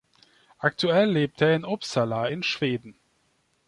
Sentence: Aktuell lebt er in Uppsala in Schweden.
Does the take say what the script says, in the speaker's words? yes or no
yes